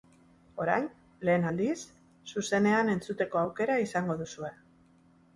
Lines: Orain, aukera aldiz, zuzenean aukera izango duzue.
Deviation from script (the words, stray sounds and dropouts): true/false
true